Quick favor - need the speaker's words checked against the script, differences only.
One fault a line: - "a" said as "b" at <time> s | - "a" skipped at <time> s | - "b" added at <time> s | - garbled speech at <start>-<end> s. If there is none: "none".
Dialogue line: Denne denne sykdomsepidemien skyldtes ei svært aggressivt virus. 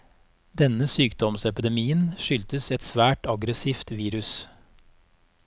- "denne" skipped at 0.9 s
- "ei" said as "et" at 2.8 s